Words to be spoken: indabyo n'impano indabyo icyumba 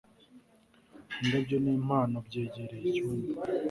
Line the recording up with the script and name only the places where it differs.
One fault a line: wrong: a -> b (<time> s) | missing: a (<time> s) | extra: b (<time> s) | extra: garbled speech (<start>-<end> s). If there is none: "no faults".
wrong: indabyo -> byegereye (2.3 s)